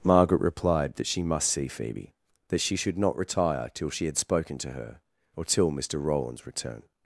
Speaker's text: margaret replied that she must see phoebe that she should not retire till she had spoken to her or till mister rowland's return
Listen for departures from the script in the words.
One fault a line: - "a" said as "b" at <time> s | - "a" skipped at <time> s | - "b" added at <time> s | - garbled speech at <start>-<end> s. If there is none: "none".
none